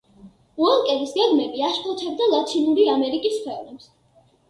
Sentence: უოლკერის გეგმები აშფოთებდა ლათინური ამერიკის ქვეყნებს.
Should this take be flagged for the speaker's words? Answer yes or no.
no